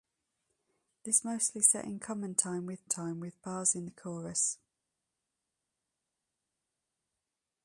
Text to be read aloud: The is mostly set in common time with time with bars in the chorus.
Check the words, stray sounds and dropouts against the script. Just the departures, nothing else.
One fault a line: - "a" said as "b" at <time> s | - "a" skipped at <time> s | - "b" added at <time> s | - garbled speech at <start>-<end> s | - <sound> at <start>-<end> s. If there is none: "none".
none